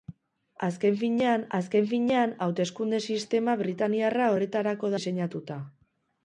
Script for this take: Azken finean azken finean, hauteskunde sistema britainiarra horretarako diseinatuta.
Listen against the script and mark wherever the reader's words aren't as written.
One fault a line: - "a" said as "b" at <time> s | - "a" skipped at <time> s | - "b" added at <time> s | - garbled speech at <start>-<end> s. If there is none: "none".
none